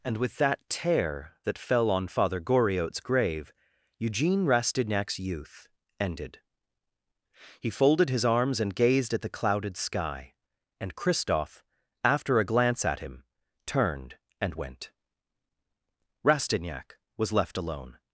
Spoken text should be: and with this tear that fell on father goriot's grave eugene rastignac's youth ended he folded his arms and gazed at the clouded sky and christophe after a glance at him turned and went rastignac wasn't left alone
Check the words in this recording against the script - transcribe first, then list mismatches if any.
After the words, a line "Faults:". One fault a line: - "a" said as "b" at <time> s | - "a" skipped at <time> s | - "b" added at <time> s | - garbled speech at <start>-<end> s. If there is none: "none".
and with that tear that fell on father goriot's grave eugene rastignac's youth ended he folded his arms and gazed at the clouded sky and christophe after a glance at him turned and went rastignac was left alone
Faults:
- "this" said as "that" at 0.4 s
- "wasn't" said as "was" at 17.2 s